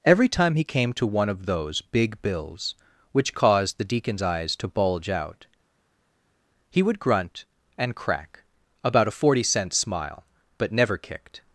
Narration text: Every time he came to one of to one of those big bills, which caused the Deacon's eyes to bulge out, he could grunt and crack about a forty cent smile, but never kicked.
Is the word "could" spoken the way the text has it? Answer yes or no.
no